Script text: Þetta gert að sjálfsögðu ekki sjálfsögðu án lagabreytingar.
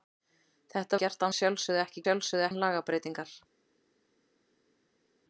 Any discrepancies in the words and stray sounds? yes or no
no